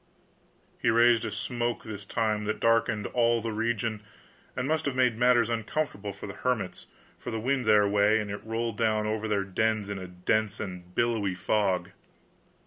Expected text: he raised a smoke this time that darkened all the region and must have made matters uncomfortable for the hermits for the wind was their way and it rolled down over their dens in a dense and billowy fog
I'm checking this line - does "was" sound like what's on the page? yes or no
no